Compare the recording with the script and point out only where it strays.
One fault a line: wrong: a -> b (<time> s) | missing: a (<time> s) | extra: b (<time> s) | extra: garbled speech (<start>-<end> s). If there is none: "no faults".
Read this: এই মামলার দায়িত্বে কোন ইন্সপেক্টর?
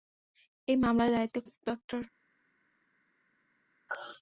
missing: কোন (1.4 s)